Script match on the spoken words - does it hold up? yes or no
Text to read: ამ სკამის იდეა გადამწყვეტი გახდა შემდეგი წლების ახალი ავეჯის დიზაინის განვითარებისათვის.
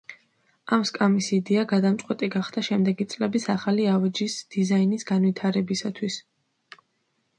yes